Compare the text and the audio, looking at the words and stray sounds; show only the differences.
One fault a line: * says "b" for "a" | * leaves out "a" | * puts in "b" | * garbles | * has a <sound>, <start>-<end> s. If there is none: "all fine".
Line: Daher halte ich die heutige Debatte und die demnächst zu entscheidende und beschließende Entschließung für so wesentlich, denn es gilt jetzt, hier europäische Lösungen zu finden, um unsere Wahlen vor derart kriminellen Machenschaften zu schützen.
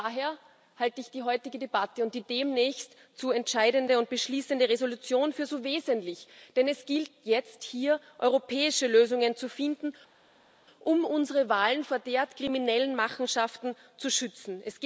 all fine